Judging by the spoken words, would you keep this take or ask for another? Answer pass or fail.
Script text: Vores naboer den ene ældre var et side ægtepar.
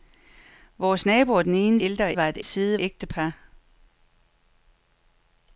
pass